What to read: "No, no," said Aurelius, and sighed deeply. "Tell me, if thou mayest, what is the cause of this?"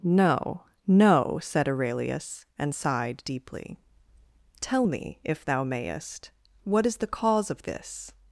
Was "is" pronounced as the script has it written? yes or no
yes